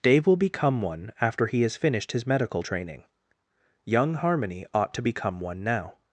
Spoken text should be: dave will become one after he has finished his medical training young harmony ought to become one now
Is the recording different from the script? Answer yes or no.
no